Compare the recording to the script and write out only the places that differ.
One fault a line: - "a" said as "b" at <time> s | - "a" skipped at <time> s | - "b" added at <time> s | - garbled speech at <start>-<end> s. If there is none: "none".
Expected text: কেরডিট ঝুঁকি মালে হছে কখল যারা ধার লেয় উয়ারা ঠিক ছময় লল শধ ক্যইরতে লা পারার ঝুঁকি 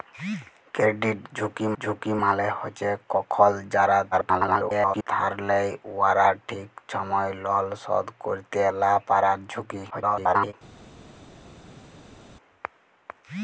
- "ঝুঁকি" added at 1.8 s
- garbled speech at 4.1-5.1 s
- garbled speech at 9.9-10.5 s